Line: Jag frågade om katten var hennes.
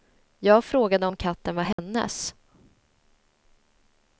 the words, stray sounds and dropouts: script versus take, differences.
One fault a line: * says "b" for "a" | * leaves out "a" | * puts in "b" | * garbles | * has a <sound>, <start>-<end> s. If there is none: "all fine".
* has a dropout, 1.7-1.8 s